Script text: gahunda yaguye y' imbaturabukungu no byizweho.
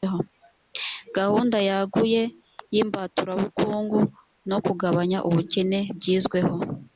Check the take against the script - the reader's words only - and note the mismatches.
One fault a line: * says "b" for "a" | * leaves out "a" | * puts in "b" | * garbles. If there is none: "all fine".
* puts in "kugabanya ubukene"